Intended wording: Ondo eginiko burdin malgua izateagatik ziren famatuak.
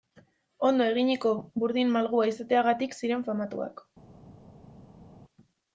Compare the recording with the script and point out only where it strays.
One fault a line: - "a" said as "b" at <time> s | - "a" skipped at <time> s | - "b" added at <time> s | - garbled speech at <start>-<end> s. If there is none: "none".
none